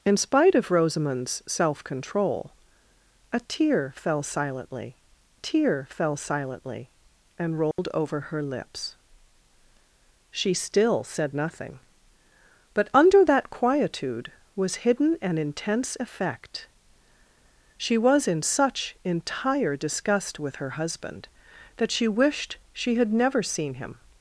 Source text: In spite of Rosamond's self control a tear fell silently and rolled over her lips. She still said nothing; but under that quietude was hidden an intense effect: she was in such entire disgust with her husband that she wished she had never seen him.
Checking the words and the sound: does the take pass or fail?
fail